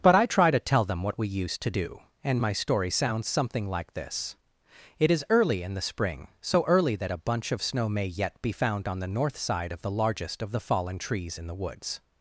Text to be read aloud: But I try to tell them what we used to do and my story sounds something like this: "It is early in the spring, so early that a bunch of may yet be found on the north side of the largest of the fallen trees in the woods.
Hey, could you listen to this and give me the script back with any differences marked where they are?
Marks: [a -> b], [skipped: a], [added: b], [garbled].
But I try to tell them what we used to do and my story sounds something like this: "It is early in the spring, so early that a bunch of [added: snow] may yet be found on the north side of the largest of the fallen trees in the woods.